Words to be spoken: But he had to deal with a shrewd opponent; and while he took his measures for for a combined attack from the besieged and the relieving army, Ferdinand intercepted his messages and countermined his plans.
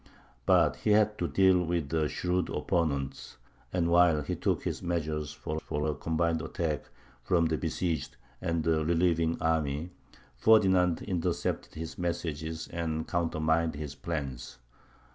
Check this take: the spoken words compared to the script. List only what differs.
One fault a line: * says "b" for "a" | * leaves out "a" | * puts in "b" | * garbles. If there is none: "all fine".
all fine